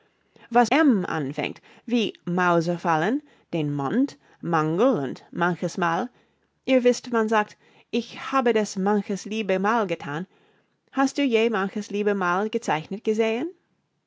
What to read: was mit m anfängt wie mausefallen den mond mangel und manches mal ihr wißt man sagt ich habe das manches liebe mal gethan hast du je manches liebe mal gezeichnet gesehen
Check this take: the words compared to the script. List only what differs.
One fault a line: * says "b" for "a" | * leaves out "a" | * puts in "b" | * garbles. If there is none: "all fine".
* leaves out "mit"